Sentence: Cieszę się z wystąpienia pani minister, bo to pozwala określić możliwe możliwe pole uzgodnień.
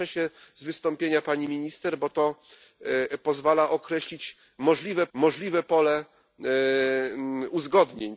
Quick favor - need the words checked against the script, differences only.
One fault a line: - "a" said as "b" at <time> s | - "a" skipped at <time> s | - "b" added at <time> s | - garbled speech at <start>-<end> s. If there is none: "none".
none